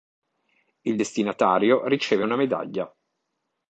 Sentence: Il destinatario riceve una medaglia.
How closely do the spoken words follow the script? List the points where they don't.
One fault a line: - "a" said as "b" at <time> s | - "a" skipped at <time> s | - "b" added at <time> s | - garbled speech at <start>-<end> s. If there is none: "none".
none